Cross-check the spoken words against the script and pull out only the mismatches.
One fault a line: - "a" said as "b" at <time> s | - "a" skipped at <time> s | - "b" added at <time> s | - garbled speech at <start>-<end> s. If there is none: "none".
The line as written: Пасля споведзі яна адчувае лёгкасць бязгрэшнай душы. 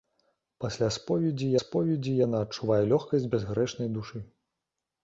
- "споведзі" added at 1.6 s